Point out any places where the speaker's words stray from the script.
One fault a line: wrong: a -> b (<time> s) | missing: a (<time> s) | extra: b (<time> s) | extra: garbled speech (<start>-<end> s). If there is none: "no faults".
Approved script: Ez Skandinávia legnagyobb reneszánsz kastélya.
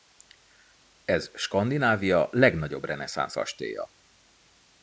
no faults